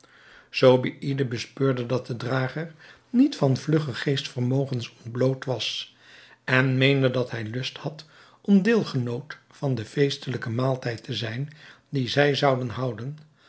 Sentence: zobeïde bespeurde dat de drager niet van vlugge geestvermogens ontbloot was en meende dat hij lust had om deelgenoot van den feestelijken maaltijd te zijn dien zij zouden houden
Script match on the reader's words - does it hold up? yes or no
yes